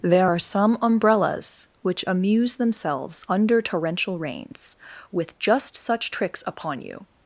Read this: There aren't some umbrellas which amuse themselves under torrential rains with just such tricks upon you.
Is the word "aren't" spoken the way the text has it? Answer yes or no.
no